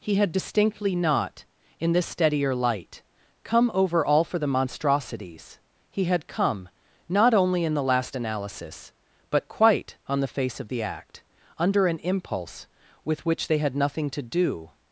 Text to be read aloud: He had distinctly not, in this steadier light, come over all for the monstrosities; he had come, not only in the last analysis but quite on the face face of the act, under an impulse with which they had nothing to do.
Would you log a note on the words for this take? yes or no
yes